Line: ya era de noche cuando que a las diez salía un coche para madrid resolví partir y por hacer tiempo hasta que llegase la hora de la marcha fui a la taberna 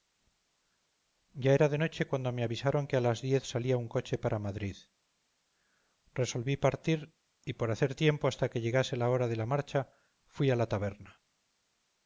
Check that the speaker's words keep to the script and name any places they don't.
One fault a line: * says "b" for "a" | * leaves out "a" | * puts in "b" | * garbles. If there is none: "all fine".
* puts in "me avisaron"